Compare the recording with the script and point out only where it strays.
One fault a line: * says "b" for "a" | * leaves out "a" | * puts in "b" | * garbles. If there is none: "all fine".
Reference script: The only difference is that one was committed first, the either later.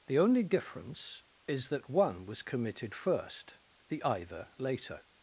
all fine